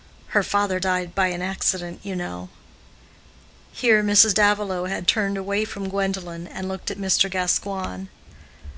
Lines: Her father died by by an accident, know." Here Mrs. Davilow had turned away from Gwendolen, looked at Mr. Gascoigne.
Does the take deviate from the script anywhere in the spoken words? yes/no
yes